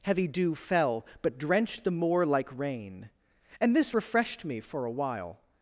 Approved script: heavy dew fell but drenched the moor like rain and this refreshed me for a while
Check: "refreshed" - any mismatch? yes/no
no